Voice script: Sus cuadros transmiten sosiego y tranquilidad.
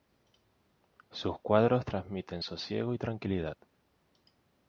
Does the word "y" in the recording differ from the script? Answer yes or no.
no